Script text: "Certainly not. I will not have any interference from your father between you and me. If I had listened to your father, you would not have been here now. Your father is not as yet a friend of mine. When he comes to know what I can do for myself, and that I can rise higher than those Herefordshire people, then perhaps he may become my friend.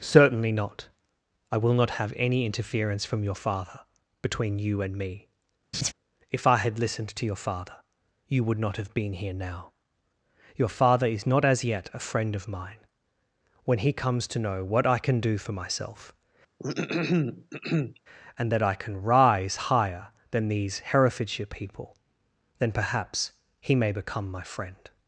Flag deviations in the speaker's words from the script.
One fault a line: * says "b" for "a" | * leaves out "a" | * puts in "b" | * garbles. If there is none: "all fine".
* says "these" for "those"